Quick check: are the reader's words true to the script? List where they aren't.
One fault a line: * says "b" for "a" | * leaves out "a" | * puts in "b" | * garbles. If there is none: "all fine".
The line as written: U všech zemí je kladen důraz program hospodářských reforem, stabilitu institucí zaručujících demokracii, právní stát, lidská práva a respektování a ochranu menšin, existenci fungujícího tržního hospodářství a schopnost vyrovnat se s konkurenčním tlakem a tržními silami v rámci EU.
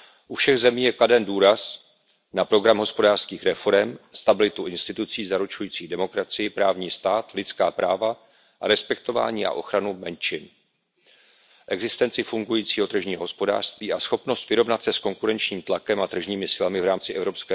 * puts in "na"